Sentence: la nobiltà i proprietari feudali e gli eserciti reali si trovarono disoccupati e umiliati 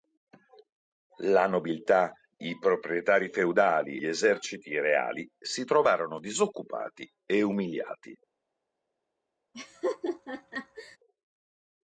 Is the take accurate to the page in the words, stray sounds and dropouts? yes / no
no